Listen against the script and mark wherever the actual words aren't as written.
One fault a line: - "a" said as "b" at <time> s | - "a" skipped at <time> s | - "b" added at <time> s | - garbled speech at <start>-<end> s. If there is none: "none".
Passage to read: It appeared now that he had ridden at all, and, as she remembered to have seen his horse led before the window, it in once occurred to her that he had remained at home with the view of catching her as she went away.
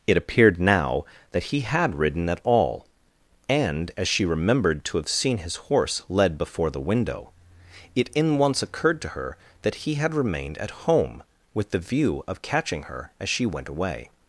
none